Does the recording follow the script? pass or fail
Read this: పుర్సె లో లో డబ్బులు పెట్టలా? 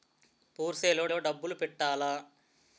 pass